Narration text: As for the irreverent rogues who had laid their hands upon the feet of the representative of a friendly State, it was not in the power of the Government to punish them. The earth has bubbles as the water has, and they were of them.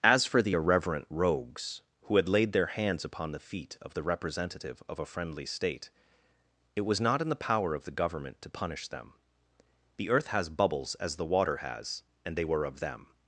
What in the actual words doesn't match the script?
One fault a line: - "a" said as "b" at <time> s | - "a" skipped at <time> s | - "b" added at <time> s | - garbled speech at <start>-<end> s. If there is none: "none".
none